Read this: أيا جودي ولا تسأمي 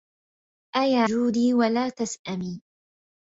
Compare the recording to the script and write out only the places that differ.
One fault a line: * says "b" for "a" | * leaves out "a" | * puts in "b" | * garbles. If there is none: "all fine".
all fine